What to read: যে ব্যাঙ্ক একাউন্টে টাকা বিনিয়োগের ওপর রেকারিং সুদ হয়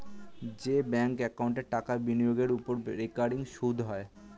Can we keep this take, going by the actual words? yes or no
yes